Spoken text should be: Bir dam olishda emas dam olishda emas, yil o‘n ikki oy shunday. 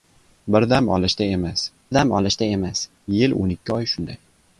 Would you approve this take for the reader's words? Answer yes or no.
yes